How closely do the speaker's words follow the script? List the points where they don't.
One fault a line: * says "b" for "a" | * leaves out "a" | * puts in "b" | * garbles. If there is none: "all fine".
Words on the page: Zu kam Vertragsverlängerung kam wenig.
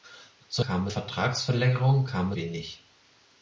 all fine